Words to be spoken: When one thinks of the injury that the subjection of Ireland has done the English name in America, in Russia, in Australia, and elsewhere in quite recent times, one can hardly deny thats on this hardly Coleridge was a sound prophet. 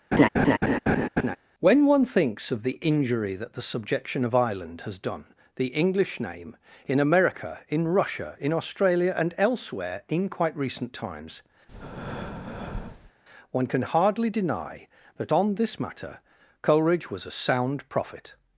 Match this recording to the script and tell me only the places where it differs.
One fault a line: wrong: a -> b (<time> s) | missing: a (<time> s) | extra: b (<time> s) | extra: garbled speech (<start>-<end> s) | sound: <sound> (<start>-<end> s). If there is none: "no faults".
sound: laugh (0.1-1.4 s)
sound: breath (11.7-13.1 s)
wrong: thats -> that (15.2 s)
wrong: hardly -> matter (15.8 s)